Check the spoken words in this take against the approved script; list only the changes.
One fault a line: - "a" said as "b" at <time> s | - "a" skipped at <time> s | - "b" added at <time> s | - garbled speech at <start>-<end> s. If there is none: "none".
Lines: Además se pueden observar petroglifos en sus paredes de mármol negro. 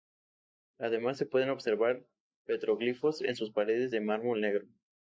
none